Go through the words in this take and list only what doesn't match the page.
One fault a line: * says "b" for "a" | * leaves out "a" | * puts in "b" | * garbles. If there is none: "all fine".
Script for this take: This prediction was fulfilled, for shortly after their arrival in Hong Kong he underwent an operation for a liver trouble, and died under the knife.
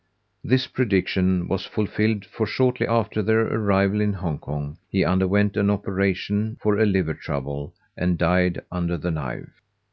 all fine